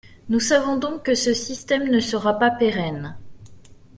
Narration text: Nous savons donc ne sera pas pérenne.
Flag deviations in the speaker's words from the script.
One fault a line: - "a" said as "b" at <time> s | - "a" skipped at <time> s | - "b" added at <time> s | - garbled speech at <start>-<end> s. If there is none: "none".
- "que ce système" added at 1.0 s